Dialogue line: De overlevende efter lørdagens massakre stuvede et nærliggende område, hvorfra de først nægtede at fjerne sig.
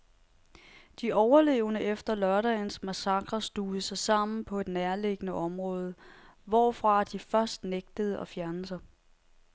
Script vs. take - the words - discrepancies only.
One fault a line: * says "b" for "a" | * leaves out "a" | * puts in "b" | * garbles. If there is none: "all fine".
* puts in "sig sammen på"